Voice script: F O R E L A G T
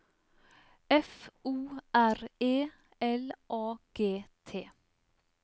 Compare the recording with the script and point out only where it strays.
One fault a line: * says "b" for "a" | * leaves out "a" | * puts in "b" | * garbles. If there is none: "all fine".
all fine